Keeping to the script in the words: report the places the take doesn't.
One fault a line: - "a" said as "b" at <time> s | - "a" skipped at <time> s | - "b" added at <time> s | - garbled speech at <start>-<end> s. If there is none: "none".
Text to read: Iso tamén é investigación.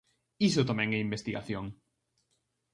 none